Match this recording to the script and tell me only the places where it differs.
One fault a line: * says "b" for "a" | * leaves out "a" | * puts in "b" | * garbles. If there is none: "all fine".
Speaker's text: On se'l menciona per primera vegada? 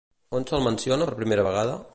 all fine